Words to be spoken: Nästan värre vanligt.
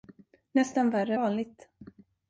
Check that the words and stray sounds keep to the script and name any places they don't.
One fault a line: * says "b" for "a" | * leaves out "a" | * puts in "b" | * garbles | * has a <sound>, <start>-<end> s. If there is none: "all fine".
all fine